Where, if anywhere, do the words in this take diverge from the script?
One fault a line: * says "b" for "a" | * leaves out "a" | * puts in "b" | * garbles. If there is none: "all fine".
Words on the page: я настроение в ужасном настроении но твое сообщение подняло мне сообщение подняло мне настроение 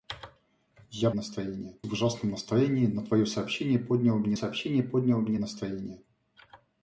all fine